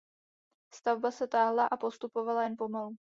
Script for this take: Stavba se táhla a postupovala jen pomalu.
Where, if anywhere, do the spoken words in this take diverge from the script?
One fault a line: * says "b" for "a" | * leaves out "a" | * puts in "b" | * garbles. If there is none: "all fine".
all fine